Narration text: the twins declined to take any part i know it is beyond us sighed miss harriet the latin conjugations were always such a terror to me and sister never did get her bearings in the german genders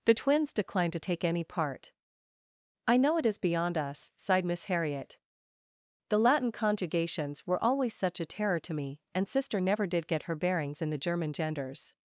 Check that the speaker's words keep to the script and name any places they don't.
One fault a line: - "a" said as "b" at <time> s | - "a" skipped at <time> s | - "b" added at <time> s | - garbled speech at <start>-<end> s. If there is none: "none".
none